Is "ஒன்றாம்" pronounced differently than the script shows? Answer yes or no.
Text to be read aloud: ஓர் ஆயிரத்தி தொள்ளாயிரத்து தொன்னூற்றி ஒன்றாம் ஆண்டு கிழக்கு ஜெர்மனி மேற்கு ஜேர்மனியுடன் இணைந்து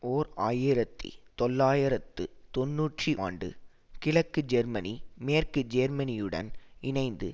yes